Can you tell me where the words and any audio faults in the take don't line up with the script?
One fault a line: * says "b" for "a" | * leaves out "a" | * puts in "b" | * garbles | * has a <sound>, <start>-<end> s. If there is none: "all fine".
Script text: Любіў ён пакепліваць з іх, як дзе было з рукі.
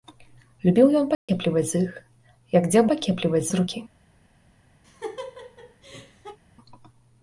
* has a dropout, 1.1-1.3 s
* says "пакепліваць" for "было"
* has a laugh, 4.8-6.4 s